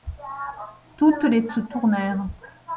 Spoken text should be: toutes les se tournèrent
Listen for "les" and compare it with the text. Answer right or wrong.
right